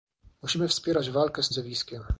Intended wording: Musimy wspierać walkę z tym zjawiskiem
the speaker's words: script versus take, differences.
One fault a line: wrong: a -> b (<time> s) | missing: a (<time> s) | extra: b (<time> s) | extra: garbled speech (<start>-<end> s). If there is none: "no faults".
missing: tym (1.5 s)